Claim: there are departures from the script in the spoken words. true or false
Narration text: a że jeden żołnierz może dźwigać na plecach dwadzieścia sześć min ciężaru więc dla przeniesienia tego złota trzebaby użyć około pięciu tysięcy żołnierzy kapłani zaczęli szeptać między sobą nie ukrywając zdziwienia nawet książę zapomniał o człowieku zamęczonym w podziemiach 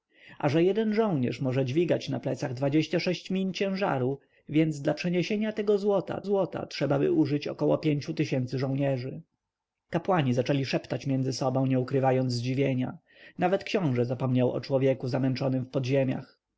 true